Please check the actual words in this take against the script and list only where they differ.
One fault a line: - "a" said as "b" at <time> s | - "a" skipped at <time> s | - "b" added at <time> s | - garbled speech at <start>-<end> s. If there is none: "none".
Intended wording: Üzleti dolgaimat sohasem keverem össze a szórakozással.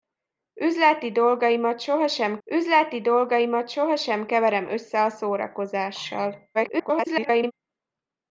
- "üzleti dolgaimat sohasem" added at 2.4 s
- garbled speech at 6.5-7.5 s